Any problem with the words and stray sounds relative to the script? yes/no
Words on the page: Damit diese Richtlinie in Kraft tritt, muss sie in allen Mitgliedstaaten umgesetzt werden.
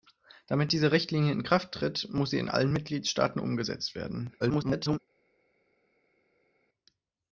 yes